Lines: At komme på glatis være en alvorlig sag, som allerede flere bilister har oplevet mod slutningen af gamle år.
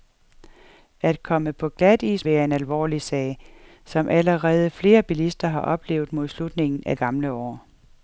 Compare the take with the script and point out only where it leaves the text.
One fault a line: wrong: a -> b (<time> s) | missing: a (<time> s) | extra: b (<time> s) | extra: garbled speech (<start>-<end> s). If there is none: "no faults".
no faults